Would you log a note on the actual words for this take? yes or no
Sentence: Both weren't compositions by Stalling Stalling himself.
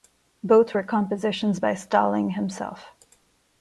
yes